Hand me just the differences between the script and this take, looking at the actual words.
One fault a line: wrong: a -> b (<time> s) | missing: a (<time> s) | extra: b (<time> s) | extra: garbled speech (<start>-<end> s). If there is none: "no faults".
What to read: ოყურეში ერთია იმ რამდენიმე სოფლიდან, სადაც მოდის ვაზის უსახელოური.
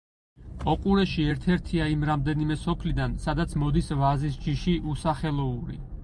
extra: ერთ (1.3 s)
extra: ჯიში (4.4 s)